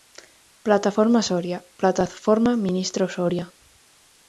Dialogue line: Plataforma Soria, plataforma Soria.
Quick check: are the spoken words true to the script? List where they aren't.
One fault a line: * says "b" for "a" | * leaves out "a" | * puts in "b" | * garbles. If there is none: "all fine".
* puts in "ministro"